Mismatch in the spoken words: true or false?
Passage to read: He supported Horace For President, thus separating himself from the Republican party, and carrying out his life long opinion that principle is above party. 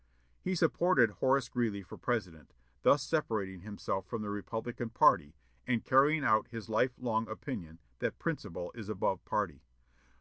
true